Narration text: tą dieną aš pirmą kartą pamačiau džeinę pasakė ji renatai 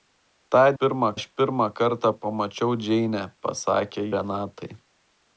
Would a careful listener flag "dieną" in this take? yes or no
yes